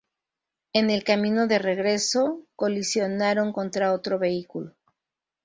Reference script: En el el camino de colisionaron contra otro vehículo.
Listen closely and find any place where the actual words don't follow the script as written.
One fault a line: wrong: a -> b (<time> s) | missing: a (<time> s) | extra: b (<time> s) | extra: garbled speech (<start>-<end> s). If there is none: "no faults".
missing: el (1.0 s)
extra: regreso (1.6 s)